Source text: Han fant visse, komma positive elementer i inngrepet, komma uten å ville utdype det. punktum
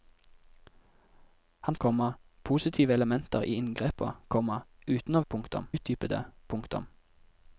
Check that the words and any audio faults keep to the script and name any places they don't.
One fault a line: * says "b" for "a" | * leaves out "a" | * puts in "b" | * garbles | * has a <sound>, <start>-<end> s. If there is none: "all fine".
* leaves out "fant visse"
* says "punktum" for "ville"